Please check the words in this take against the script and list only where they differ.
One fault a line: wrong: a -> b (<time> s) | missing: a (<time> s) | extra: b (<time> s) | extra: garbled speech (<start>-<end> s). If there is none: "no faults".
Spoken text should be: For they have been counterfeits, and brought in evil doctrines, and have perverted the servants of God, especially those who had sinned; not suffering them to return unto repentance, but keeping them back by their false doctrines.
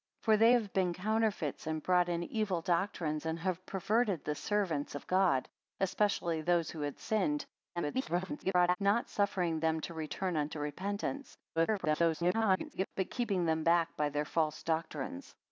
extra: garbled speech (7.8-8.8 s)
extra: garbled speech (11.6-12.9 s)